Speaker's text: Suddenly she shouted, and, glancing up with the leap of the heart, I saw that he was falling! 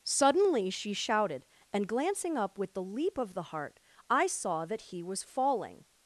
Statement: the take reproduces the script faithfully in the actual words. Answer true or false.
true